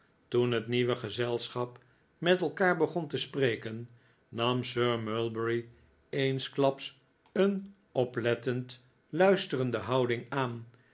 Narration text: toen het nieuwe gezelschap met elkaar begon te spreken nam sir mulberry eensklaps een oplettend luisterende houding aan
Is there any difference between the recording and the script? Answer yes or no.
no